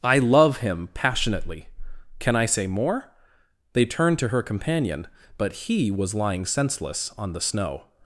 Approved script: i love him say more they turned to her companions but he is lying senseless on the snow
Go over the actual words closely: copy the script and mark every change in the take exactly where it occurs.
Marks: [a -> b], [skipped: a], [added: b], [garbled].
i love him [added: passionately can i] say more they turned to her [companions -> companion] but he [is -> was] lying senseless on the snow